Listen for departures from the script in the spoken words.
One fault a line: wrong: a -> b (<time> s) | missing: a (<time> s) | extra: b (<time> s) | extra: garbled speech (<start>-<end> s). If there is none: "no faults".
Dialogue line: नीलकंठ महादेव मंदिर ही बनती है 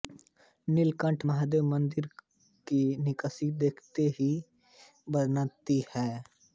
extra: की नक़्क़ाशी देखते (2.7 s)